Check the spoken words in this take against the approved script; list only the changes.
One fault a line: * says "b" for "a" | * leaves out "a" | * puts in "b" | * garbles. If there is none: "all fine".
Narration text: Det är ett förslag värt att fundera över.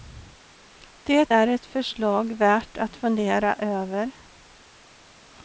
all fine